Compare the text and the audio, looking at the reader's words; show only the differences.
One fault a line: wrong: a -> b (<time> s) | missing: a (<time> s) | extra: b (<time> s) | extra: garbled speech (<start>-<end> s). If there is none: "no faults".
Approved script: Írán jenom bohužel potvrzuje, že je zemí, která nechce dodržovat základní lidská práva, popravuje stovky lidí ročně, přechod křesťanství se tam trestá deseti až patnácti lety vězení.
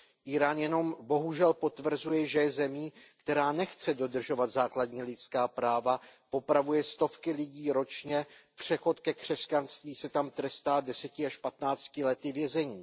extra: ke (9.0 s)